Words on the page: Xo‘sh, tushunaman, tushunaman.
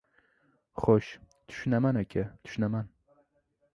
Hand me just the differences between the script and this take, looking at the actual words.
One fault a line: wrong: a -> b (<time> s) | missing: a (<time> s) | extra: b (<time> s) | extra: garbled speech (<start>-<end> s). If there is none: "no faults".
extra: aka (2.0 s)